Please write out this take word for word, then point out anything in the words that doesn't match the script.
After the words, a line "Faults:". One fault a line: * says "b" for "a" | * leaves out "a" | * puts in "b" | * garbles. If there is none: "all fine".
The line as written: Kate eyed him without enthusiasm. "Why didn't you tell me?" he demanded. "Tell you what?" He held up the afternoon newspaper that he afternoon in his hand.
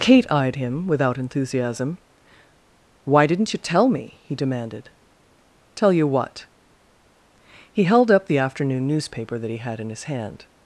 Kate eyed him without enthusiasm. "Why didn't you tell me?" he demanded. "Tell you what?" He held up the afternoon newspaper that he had in his hand.
Faults:
* says "had" for "afternoon"